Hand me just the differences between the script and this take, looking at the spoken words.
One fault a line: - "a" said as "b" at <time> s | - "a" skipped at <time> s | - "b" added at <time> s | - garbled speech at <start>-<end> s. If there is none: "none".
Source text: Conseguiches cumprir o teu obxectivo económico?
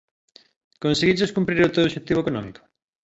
none